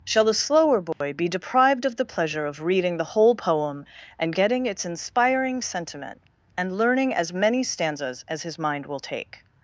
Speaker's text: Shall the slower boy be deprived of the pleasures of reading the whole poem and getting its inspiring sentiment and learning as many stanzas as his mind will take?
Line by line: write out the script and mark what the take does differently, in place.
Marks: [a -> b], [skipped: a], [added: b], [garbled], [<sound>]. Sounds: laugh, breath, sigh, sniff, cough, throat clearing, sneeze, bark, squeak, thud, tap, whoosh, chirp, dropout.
Shall the slower boy [dropout] be deprived of the [pleasures -> pleasure] of reading the whole poem and getting its inspiring sentiment and learning as many stanzas as his mind will take?